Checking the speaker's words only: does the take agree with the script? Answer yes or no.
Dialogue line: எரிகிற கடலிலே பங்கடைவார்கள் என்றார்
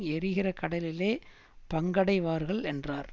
yes